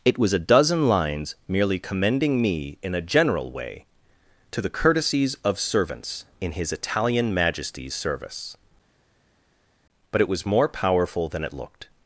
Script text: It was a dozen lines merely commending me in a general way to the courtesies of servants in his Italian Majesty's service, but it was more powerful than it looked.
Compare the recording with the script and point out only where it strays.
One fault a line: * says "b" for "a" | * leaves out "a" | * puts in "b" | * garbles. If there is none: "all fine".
all fine